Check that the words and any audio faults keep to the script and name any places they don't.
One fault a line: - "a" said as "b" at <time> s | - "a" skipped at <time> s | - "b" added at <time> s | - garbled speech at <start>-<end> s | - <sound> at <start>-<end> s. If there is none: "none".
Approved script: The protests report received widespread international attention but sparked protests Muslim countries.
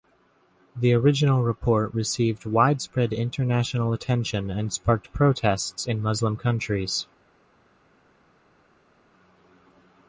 - "protests" said as "original" at 0.9 s
- "but" said as "and" at 4.5 s
- "in" added at 5.9 s